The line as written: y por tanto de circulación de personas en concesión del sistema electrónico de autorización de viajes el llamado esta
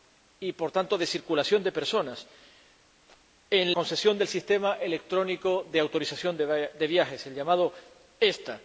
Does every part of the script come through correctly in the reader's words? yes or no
yes